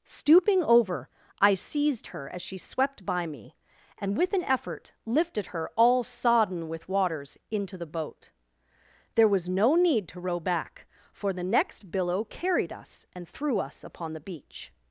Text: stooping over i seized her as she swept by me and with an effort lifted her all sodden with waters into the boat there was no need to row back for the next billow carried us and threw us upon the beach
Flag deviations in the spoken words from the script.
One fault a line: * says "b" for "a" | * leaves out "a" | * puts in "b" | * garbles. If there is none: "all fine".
all fine